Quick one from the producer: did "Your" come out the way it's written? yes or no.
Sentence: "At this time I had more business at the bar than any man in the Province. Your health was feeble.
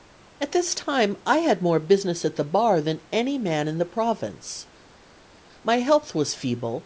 no